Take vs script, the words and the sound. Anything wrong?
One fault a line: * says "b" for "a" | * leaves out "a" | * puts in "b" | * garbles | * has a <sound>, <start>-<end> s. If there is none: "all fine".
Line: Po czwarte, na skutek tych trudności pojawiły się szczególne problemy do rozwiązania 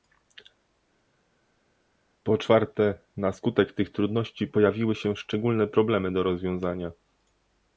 all fine